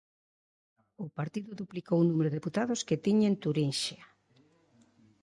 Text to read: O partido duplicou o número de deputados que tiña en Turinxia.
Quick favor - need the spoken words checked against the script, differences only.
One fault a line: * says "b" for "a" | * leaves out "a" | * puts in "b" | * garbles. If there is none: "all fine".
all fine